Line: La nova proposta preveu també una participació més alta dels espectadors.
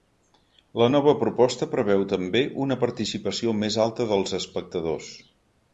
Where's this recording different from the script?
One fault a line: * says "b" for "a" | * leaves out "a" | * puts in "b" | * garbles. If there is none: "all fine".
all fine